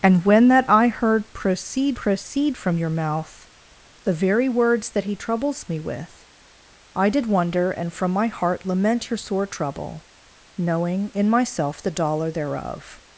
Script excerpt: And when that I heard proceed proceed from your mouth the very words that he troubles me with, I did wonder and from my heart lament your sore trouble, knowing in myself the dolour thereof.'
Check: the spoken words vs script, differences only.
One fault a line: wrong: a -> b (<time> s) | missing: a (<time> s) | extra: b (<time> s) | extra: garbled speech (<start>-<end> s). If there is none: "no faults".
no faults